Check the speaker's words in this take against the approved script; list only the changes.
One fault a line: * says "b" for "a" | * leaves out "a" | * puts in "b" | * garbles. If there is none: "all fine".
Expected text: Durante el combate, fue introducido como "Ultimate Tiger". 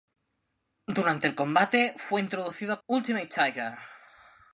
* leaves out "como"